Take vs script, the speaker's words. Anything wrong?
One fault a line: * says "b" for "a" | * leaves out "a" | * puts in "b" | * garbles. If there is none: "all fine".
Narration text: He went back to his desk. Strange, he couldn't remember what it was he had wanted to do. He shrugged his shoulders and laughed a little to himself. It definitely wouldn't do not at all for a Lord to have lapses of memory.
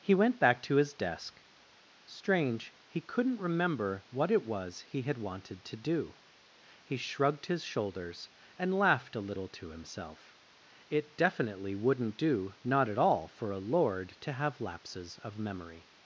all fine